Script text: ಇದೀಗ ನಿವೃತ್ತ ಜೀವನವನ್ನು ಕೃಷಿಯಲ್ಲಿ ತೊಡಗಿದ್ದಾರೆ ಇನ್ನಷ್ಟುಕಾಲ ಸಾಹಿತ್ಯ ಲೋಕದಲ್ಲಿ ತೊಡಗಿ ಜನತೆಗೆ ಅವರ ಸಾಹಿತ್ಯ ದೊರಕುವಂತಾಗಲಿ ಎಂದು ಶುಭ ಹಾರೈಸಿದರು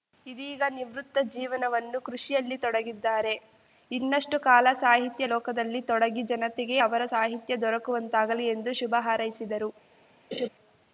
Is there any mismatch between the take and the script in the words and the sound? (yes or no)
yes